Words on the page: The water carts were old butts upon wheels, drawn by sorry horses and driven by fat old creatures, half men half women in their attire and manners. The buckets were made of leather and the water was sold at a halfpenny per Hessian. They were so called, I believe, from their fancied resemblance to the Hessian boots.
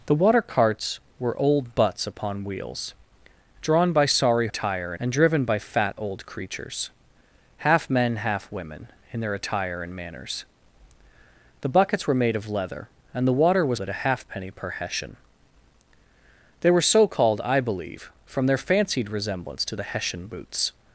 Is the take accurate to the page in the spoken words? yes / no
no